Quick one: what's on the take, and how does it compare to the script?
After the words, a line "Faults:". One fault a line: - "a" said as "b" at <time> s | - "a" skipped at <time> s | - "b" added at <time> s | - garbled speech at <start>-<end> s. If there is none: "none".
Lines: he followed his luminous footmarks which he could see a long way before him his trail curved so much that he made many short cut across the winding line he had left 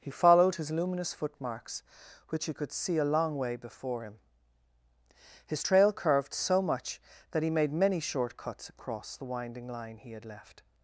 he followed his luminous footmarks which he could see a long way before him his trail curved so much that he made many short cuts across the winding line he had left
Faults:
- "cut" said as "cuts" at 8.4 s